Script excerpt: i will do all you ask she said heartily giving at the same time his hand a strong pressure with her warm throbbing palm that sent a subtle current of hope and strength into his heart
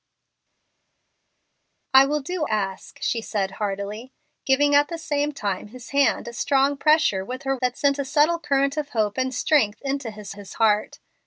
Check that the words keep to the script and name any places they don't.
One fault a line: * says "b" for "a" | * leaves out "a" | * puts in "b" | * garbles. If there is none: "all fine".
* leaves out "all you"
* leaves out "warm throbbing palm"
* puts in "his"